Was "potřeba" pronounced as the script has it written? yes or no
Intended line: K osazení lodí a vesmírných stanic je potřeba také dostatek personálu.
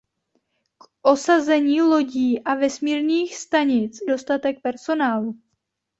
no